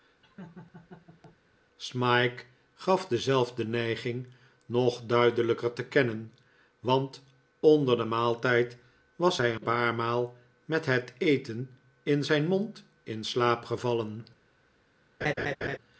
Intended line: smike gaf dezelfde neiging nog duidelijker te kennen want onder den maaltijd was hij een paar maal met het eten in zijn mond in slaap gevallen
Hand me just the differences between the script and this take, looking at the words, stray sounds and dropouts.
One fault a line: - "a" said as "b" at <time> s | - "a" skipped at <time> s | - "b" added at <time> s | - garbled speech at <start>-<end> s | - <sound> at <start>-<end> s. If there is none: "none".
- laugh at 0.2-1.4 s
- "een" skipped at 9.5 s
- laugh at 15.2-15.8 s